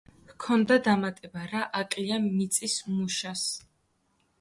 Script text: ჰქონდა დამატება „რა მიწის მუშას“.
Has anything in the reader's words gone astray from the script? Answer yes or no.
yes